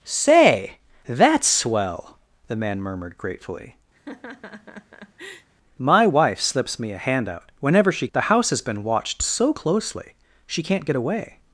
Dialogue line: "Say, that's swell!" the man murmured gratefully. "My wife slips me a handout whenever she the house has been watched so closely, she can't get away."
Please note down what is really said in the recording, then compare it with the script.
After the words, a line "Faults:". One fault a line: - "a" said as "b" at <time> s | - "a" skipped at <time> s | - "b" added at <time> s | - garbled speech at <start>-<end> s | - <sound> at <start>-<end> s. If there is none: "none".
"Say, that's swell!" the man murmured gratefully. "My wife slips me a handout whenever she the house has been watched so closely, she can't get away."
Faults:
- laugh at 3.9-5.5 s